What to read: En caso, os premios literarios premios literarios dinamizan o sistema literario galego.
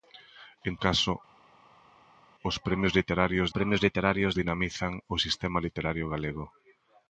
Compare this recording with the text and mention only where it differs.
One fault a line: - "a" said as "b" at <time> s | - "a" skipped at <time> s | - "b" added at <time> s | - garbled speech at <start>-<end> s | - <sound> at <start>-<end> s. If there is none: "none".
none